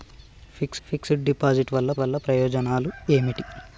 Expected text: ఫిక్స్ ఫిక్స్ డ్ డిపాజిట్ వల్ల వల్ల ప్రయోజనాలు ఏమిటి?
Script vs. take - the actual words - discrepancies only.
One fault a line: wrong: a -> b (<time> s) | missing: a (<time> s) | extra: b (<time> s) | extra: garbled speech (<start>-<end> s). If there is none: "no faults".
no faults